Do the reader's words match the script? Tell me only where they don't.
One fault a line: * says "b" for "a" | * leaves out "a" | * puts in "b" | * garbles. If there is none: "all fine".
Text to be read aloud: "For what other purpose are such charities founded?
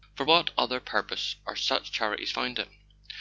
all fine